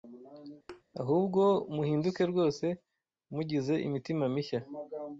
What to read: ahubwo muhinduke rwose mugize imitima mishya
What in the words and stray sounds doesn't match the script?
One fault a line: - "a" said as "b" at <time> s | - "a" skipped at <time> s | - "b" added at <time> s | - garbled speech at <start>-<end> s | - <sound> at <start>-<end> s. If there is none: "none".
- thud at 0.7-0.8 s